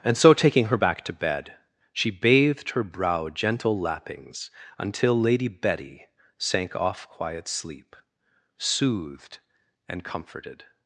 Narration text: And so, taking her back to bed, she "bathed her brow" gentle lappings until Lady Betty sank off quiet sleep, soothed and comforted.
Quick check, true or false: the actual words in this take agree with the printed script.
true